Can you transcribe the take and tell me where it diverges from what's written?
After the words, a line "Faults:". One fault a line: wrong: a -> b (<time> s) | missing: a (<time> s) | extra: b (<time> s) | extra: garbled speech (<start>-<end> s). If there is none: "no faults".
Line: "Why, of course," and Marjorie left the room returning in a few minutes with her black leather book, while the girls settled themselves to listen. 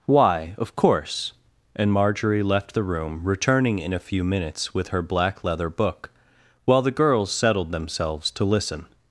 "Why, of course," and Marjorie left the room returning in a few minutes with her black leather book, while the girls settled themselves to listen.
Faults:
no faults